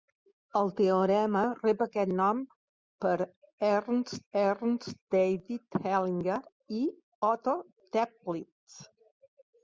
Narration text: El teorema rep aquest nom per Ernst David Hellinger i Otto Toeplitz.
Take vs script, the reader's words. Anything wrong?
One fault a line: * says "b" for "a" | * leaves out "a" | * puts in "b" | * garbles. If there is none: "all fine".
* puts in "Ernst"